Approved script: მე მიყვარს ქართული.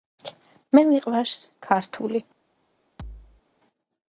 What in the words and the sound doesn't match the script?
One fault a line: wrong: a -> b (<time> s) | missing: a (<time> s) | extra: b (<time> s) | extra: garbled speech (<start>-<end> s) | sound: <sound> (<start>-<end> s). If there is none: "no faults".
sound: thud (3.0-3.4 s)